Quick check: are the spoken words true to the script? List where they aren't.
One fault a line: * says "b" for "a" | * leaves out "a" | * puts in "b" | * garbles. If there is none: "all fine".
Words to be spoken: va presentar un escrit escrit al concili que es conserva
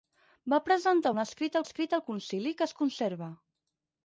all fine